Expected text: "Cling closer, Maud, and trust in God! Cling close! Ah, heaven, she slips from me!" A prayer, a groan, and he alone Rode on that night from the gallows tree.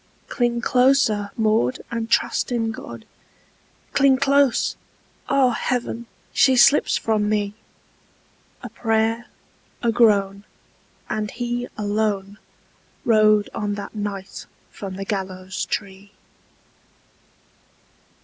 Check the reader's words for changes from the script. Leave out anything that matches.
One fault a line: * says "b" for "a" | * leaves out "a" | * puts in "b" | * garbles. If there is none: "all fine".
all fine